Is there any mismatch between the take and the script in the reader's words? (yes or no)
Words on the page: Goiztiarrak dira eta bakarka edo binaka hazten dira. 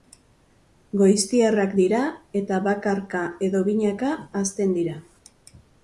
no